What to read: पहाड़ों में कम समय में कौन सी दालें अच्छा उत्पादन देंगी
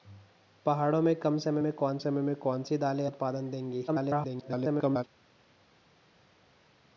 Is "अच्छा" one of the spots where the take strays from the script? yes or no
yes